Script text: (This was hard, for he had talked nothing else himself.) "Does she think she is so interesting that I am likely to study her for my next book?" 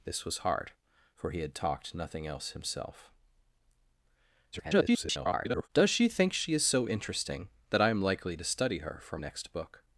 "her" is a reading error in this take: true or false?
false